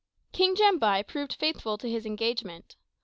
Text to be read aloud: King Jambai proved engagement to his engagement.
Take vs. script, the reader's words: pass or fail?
fail